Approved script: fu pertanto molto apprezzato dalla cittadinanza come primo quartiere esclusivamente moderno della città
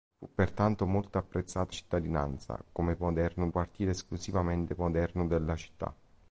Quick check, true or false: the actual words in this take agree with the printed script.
false